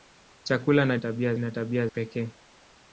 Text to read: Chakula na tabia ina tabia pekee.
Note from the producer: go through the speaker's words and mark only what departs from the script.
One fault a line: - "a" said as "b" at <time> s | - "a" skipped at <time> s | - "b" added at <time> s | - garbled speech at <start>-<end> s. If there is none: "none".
none